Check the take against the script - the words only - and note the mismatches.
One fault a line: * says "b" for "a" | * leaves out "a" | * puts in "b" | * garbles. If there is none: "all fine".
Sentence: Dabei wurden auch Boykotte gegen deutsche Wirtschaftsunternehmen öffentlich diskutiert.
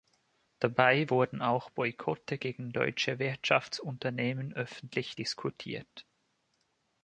all fine